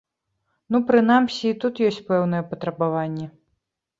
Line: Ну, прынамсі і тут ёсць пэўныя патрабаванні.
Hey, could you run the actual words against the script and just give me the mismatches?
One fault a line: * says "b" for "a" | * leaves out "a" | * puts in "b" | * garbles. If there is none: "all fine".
all fine